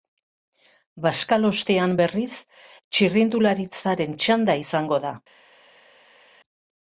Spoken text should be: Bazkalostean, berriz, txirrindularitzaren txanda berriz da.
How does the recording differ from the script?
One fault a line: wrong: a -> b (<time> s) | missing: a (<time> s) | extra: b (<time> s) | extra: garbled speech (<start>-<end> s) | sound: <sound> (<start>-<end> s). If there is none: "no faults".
wrong: berriz -> izango (4.6 s)